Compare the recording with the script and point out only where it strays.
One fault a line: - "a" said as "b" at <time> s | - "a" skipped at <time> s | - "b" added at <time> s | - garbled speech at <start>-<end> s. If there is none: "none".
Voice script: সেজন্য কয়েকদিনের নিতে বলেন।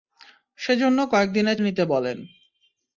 none